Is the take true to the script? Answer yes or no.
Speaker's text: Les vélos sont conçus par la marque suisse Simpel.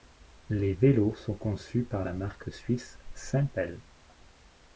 yes